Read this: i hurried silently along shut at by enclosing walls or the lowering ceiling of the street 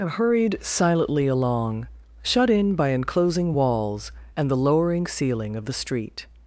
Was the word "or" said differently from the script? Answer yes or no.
yes